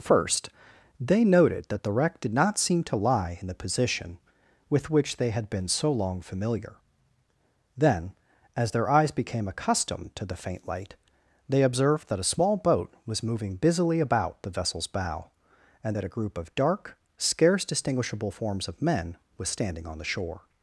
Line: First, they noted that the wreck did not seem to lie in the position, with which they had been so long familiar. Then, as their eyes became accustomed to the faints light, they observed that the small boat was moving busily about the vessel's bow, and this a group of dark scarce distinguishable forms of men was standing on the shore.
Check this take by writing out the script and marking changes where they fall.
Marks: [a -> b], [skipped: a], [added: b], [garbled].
First, they noted that the wreck did not seem to lie in the position, with which they had been so long familiar. Then, as their eyes became accustomed to the [faints -> faint] light, they observed that [the -> a] small boat was moving busily about the vessel's bow, and [this -> that] a group of dark scarce distinguishable forms of men was standing on the shore.